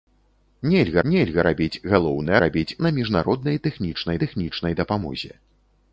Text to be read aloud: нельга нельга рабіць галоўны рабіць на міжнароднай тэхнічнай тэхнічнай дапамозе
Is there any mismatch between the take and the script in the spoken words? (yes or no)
no